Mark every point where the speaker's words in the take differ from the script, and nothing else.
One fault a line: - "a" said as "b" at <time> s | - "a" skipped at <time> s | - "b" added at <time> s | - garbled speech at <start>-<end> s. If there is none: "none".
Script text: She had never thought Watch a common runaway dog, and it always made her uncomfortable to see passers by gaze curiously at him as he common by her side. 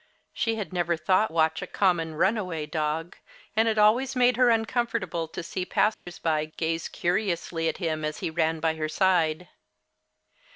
- "common" said as "ran" at 8.3 s